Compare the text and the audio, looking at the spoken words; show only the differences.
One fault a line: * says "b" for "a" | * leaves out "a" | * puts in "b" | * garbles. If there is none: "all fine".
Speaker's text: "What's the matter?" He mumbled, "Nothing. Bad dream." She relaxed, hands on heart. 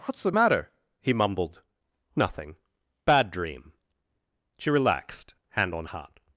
* says "hand" for "hands"